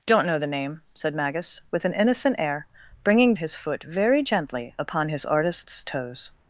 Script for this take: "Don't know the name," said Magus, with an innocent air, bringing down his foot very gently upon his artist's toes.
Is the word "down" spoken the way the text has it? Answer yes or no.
no